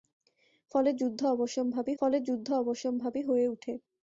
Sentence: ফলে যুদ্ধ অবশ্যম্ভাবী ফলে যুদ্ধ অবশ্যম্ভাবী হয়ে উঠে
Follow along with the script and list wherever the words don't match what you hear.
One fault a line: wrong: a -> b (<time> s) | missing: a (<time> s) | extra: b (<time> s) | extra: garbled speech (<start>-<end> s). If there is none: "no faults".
no faults